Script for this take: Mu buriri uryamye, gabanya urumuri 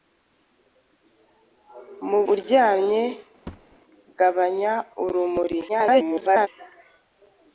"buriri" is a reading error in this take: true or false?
true